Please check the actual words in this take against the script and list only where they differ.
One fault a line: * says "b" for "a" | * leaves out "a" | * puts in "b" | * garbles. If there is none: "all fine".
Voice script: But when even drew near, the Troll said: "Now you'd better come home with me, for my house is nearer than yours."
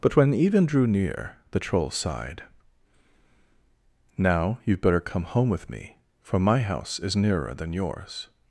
* says "sighed" for "said"